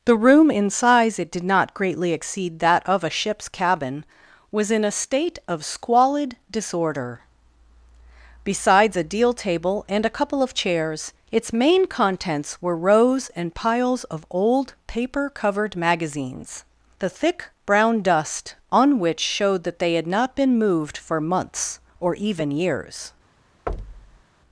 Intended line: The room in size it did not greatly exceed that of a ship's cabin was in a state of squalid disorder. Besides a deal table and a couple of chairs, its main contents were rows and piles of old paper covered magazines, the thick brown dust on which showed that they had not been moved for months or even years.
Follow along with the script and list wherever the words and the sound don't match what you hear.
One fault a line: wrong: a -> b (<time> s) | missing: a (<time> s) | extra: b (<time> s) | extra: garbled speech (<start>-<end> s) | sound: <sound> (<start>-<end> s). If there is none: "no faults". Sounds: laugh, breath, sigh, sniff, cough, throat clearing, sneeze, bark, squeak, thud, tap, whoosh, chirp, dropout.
sound: thud (23.7-24.2 s)